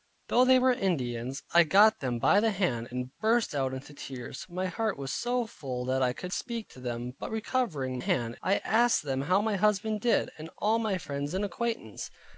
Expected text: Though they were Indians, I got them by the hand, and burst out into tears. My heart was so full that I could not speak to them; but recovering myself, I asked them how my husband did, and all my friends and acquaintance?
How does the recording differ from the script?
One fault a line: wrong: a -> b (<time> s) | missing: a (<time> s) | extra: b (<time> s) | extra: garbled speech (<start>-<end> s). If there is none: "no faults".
missing: not (6.3 s)
wrong: myself -> hand (8.0 s)